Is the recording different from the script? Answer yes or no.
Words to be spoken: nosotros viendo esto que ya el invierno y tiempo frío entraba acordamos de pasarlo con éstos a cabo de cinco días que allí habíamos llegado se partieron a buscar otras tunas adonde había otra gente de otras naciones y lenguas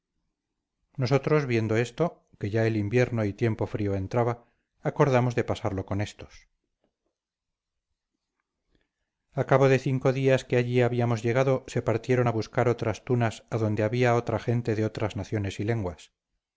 no